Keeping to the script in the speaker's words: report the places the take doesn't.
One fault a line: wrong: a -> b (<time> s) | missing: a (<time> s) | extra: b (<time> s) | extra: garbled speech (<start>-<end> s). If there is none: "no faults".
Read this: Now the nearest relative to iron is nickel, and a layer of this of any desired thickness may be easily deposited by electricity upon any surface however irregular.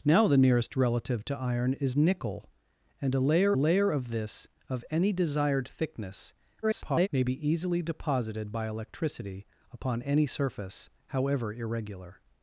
extra: layer (3.5 s)
extra: garbled speech (6.6-7.1 s)